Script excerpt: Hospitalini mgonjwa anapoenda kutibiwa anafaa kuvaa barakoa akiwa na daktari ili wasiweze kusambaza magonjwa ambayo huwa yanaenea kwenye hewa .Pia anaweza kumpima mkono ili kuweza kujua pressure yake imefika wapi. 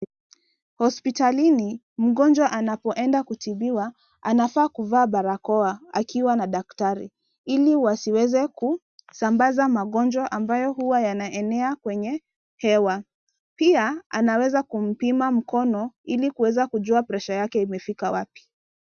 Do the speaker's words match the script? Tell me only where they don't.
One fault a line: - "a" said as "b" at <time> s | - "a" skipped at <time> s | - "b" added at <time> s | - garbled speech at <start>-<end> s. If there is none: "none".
none